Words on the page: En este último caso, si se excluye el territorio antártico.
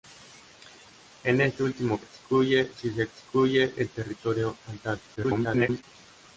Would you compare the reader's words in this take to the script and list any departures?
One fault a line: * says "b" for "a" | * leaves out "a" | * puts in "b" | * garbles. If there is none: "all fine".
* says "excluye" for "caso"
* garbles